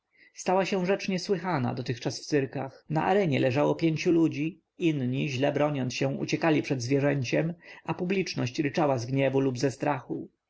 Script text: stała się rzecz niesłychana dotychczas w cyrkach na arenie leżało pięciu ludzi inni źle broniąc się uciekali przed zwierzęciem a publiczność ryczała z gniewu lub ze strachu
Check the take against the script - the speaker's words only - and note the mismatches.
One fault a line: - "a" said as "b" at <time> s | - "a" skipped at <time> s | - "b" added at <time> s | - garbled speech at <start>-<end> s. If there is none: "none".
none